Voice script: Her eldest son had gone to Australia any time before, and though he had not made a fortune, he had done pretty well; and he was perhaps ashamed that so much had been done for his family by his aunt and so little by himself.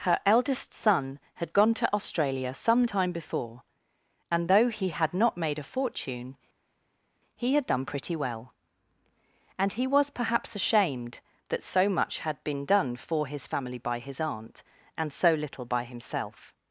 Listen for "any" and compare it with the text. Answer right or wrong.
wrong